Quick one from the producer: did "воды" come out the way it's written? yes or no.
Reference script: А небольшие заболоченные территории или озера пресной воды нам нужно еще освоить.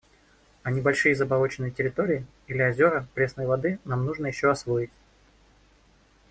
yes